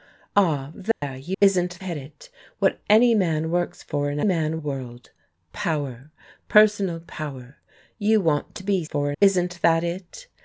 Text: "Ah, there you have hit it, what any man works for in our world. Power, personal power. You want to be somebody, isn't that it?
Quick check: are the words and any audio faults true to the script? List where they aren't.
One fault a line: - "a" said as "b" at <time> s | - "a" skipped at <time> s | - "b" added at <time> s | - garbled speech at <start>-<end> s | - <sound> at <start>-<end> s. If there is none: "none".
- dropout at 0.9-1.0 s
- "have" said as "isn't" at 1.4 s
- "our" said as "man" at 4.2 s
- "somebody" said as "for" at 8.8 s